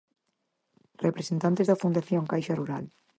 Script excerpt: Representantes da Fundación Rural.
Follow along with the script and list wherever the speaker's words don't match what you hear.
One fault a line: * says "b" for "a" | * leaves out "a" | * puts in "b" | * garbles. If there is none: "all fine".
* puts in "Caixa"